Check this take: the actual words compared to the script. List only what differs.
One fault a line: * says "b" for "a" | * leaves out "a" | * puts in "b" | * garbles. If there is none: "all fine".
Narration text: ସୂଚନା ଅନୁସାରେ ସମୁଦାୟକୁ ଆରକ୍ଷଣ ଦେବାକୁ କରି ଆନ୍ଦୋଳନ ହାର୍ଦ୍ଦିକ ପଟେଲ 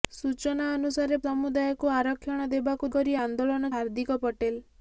all fine